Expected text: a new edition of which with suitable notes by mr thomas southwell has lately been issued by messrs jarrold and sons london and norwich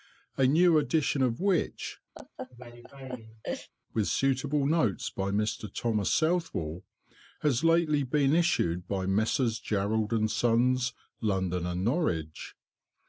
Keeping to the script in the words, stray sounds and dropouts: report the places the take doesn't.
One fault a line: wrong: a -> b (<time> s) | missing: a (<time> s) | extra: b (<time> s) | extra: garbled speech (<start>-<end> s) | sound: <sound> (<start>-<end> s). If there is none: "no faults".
sound: laugh (2.1-3.7 s)